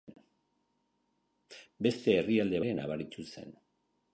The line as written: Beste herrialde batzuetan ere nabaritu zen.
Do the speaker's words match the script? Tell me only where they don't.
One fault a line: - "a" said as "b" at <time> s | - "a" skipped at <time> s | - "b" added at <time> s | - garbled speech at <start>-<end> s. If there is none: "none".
- "batzuetan" skipped at 2.6 s